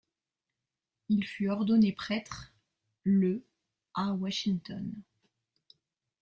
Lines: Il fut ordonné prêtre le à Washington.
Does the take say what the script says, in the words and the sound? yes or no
yes